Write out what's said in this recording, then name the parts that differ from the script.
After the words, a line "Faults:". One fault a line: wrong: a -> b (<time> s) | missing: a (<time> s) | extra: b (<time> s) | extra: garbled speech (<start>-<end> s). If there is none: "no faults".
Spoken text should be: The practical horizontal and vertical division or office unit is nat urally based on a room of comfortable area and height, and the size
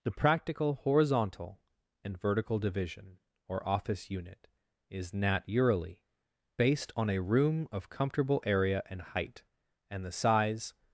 The practical horizontal and vertical division or office unit is nat urally based on a room of comfortable area and height, and the size
Faults:
no faults